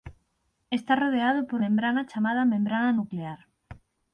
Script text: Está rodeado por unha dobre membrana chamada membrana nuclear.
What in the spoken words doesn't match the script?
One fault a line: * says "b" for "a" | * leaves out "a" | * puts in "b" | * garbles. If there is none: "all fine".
* leaves out "unha dobre"